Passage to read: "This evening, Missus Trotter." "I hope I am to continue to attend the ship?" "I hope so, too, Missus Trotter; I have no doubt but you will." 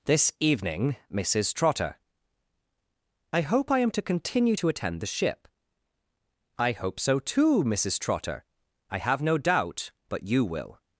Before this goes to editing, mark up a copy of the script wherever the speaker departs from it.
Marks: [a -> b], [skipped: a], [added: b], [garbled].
"This evening, Missus Trotter." "I hope I am to continue to attend the ship?" "I hope so, too, Missus Trotter; I have no doubt but you will."